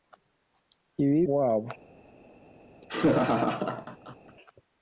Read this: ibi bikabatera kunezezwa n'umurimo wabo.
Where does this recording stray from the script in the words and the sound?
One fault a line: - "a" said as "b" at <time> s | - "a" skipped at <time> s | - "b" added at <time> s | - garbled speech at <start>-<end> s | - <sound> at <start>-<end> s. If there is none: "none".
- "bikabatera kunezezwa n'umurimo" skipped at 1.2 s
- laugh at 2.8-4.4 s